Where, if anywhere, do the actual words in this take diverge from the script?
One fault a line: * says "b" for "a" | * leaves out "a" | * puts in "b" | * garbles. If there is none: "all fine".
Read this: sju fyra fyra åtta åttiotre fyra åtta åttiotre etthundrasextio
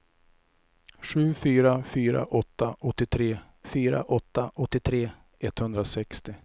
all fine